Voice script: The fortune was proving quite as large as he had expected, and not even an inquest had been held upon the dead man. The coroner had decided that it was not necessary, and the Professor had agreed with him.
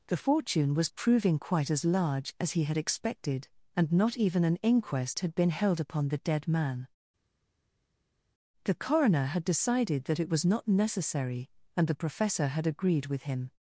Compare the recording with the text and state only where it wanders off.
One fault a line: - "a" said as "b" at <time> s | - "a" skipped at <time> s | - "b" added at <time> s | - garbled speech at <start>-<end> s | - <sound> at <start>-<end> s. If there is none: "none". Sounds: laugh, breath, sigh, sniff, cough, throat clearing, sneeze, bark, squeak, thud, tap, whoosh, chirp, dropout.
none